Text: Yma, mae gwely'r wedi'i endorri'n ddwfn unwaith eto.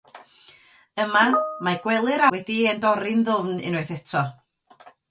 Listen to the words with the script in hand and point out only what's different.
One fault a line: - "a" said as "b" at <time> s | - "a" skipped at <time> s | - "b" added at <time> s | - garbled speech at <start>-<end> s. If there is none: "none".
none